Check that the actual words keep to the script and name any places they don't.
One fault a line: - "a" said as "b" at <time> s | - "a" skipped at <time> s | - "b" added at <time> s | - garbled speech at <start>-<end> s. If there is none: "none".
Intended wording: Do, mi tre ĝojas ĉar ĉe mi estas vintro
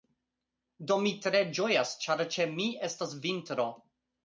none